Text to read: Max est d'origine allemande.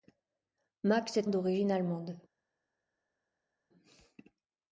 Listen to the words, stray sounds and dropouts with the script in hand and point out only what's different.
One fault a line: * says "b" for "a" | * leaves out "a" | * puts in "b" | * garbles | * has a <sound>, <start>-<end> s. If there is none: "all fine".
all fine